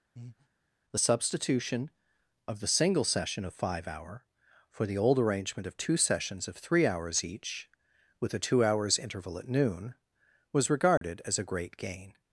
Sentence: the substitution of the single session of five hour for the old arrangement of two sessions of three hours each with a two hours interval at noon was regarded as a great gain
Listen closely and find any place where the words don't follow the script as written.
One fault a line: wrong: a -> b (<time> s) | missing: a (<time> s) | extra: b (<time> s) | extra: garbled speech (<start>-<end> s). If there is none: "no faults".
no faults